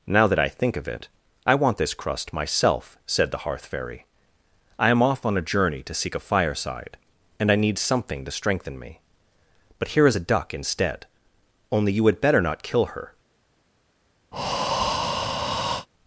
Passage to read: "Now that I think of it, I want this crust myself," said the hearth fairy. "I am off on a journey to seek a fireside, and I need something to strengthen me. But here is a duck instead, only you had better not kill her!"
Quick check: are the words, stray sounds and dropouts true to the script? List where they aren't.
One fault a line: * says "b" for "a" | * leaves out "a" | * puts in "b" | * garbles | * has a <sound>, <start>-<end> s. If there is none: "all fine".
* has a breath, 14.3-15.9 s